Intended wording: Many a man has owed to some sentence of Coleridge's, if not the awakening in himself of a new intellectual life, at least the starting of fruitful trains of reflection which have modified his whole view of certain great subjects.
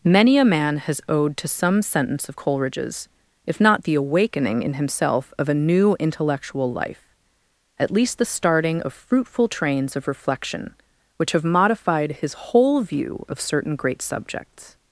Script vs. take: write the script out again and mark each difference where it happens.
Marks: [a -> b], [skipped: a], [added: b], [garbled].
Many a man has owed to some sentence of Coleridge's, if not the awakening in himself of a new intellectual life, at least the starting of fruitful trains of reflection which have modified his whole view of certain great subjects.